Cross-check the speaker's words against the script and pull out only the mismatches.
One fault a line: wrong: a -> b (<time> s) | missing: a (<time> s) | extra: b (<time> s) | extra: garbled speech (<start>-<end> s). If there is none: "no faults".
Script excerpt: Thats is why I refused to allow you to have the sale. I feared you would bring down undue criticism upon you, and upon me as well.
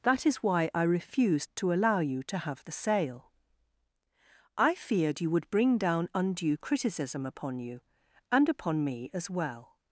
wrong: Thats -> That (0.0 s)